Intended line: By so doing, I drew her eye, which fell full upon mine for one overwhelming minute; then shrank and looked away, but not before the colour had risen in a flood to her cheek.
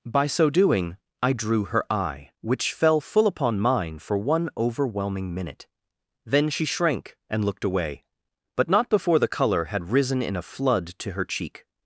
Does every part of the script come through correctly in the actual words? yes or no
no